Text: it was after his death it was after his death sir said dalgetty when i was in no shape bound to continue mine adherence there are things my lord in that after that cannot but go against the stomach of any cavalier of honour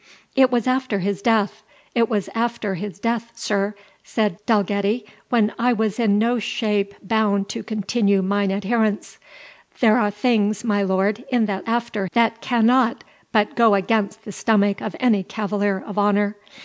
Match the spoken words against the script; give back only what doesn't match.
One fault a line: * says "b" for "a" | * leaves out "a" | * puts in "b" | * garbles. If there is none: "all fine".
all fine